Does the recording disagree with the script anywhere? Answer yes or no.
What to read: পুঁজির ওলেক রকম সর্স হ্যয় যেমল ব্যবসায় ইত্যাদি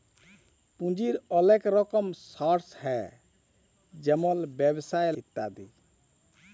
no